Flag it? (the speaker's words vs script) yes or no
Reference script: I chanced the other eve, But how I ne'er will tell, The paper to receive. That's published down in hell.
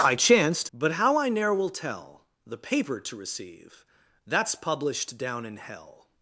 yes